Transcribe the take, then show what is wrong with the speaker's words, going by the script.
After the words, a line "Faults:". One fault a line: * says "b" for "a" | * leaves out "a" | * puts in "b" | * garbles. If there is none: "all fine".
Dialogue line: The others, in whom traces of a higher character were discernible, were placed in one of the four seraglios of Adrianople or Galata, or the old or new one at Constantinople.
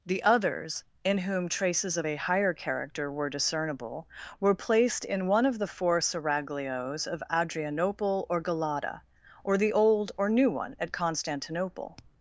The others, in whom traces of a higher character were discernible, were placed in one of the four seraglios of Adrianople or Galata, or the old or new one at Constantinople.
Faults:
all fine